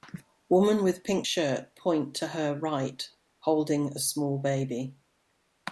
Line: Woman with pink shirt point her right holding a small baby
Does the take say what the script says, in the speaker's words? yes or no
no